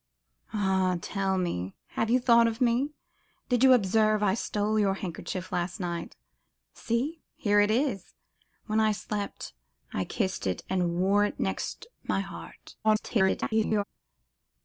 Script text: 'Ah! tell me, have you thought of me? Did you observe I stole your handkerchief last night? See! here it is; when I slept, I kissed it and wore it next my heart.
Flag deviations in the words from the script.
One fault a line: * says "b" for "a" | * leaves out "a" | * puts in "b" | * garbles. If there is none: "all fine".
* garbles